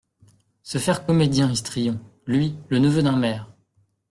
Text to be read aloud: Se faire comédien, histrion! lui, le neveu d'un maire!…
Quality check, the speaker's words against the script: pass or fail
pass